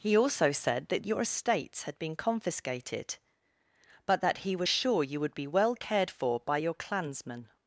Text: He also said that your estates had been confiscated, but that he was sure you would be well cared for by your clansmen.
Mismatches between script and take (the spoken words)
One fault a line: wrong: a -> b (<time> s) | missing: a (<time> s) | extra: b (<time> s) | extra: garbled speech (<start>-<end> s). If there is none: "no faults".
no faults